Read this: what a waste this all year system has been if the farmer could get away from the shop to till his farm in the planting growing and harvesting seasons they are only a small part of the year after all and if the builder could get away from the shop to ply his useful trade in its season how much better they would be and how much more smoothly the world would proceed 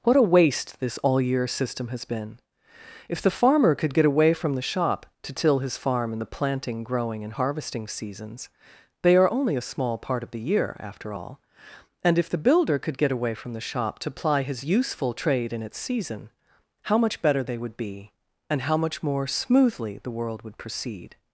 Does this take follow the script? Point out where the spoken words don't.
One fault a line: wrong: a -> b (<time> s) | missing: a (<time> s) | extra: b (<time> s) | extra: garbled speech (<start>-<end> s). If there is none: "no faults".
no faults